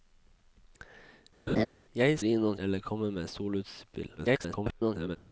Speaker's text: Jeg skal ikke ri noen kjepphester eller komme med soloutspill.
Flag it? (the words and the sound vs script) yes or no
yes